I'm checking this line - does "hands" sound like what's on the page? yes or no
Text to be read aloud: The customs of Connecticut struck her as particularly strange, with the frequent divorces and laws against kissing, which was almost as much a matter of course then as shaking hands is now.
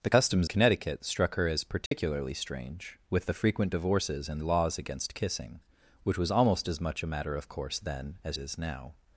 no